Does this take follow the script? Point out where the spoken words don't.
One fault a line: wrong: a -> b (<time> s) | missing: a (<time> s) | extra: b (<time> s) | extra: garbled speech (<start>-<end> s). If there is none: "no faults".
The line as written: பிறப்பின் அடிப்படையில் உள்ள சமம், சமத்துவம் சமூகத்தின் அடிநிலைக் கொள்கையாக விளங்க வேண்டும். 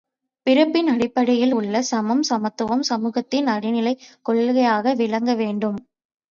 no faults